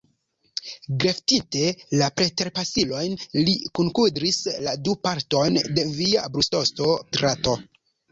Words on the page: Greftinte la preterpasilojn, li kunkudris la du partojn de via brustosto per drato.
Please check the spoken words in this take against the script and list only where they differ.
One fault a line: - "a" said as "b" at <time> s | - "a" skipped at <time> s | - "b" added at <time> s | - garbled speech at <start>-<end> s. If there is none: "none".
- "per" skipped at 7.0 s